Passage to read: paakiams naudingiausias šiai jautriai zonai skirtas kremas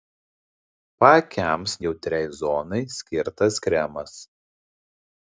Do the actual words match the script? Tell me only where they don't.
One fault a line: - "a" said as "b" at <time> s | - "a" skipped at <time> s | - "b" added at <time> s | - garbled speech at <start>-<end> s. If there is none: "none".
- "naudingiausias šiai" skipped at 1.8 s